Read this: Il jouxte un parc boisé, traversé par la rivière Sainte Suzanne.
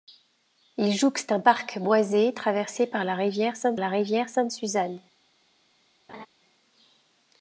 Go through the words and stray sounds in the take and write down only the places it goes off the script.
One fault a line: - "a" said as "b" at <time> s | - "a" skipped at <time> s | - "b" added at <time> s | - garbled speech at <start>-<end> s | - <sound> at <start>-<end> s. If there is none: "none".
- "la rivière Sainte" added at 3.8 s
- laugh at 6.1-6.3 s